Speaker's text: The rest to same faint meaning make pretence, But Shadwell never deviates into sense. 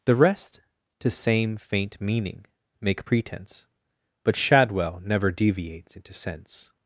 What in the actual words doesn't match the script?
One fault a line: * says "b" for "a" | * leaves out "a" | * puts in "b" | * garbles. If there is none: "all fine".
all fine